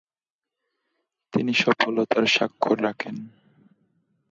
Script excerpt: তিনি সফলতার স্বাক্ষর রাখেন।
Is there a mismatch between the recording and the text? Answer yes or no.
no